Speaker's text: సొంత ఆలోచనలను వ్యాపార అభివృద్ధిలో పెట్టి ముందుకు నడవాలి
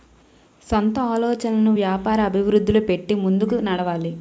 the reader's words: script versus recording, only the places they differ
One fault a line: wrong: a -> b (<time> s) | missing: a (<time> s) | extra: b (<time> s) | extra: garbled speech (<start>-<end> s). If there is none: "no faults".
no faults